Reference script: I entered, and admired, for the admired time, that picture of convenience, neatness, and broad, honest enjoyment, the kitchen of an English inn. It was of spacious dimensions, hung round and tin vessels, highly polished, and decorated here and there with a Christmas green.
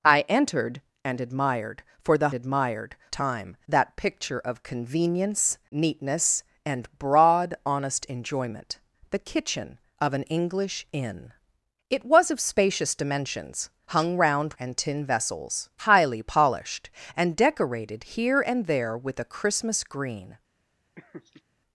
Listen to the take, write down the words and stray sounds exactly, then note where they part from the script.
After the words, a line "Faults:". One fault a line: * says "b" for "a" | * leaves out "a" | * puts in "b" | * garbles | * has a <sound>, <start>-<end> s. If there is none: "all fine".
I entered, and admired, for the admired time, that picture of convenience, neatness, and broad, honest enjoyment, the kitchen of an English inn. It was of spacious dimensions, hung round and tin vessels, highly polished, and decorated here and there with a Christmas green.
Faults:
* has a laugh, 21.0-21.4 s